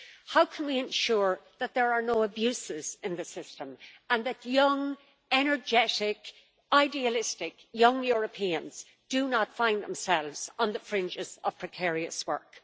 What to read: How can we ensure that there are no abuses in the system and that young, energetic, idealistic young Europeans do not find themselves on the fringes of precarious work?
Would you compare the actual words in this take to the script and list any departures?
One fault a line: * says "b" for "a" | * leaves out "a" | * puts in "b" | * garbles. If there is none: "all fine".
all fine